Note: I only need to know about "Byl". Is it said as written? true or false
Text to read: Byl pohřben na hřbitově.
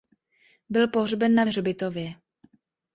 true